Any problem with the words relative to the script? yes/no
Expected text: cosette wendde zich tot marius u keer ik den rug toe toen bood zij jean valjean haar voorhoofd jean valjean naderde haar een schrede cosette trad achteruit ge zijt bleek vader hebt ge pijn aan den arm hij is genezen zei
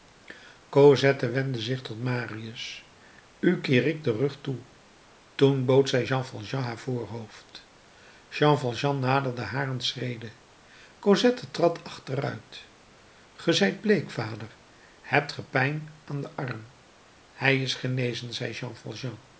no